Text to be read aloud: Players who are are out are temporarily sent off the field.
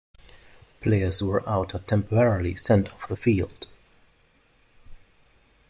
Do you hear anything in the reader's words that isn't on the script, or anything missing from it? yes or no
yes